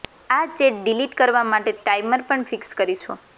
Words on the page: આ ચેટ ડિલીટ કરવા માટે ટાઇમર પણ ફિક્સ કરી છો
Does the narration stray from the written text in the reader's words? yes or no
no